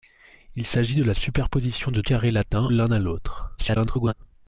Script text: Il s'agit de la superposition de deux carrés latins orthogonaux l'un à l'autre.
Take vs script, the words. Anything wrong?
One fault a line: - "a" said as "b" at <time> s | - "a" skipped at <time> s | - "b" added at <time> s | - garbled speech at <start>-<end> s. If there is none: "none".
- "deux" skipped at 2.0 s
- "orthogonaux" skipped at 2.7 s
- garbled speech at 3.6-4.1 s